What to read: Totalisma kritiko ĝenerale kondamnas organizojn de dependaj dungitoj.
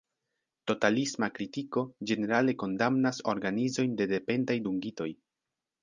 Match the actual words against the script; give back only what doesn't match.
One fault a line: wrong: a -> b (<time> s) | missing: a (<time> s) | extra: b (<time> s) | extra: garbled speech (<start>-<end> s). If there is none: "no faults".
no faults